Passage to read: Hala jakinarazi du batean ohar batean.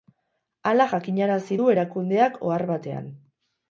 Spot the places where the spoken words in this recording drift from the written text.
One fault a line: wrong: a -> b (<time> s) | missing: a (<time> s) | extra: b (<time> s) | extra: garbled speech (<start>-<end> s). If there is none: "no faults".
wrong: batean -> erakundeak (1.7 s)